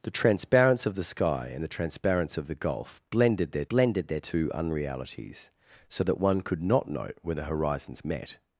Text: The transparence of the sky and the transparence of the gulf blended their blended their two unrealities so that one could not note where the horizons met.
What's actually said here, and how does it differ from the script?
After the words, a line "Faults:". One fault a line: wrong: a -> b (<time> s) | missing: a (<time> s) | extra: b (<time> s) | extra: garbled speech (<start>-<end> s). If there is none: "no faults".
The transparence of the sky and the transparence of the gulf blended their blended their two unrealities so that one could not note where the horizons met.
Faults:
no faults